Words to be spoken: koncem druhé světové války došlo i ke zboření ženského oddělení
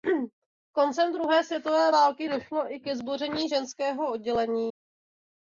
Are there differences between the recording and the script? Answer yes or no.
no